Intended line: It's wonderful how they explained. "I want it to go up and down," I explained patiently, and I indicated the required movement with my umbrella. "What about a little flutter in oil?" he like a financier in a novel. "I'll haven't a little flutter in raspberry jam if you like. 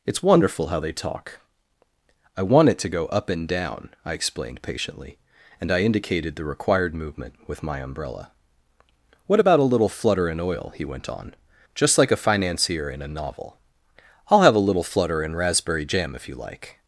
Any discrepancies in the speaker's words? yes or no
yes